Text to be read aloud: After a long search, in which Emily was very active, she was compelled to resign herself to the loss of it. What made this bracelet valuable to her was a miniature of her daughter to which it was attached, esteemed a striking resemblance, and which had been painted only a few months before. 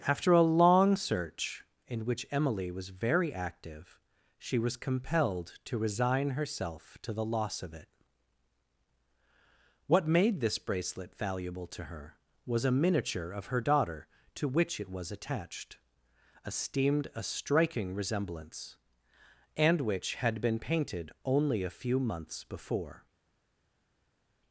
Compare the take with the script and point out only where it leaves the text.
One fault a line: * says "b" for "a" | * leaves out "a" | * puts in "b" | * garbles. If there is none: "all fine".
all fine